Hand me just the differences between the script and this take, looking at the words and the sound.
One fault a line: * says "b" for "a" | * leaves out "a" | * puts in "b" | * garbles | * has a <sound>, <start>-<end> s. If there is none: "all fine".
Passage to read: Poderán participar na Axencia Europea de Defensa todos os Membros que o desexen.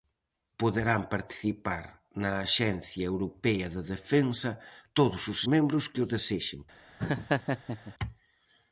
* has a laugh, 7.0-7.9 s